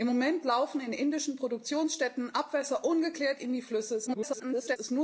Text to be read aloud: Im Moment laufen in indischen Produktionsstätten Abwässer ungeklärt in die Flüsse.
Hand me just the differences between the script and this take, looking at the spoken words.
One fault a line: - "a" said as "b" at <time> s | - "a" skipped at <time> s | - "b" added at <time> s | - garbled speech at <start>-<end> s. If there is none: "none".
- garbled speech at 4.1-4.8 s